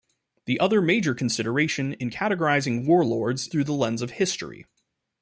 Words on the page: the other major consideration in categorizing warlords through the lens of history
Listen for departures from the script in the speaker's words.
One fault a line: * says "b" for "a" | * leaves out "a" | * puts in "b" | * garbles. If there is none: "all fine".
all fine